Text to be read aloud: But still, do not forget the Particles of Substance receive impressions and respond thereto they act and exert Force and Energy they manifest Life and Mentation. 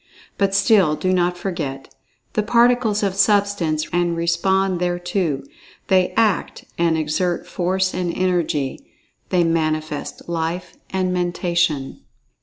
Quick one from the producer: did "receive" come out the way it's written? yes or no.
no